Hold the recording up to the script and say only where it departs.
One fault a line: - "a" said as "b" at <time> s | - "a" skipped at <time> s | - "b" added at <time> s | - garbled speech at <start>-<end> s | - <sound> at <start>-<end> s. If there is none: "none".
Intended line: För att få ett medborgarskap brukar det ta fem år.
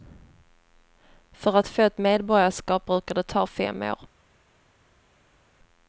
none